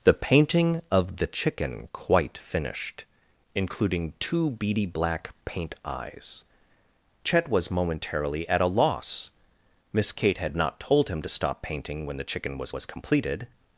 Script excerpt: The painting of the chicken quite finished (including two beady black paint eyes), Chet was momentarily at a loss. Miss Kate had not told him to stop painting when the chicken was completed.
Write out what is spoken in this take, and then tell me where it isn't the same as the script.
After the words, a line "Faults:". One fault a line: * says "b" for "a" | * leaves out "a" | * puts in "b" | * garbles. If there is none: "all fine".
The painting of the chicken quite finished (including two beady black paint eyes), Chet was momentarily at a loss. Miss Kate had not told him to stop painting when the chicken was was completed.
Faults:
* puts in "was"